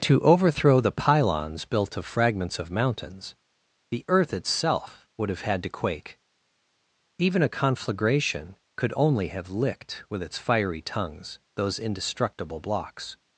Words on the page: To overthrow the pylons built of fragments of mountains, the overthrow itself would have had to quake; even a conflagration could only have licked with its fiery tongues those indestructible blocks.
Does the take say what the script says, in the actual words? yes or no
no